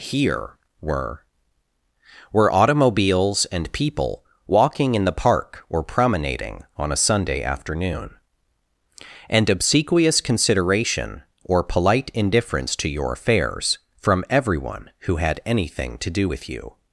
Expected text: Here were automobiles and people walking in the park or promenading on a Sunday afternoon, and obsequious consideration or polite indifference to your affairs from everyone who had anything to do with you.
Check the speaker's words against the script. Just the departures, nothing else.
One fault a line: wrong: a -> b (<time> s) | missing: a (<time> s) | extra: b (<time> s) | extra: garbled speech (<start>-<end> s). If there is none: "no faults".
extra: were (2.3 s)